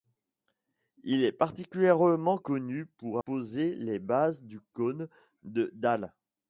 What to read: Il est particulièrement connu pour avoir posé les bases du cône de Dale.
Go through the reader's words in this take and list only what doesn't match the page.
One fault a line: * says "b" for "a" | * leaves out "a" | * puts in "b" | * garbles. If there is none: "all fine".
* leaves out "avoir"